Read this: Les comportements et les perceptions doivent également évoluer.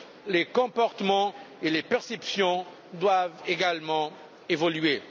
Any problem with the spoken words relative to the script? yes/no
no